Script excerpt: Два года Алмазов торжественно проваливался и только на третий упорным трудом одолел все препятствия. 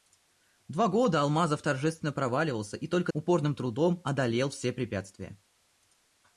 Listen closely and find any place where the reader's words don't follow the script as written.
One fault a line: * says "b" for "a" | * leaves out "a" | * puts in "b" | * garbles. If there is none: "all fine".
* leaves out "на третий"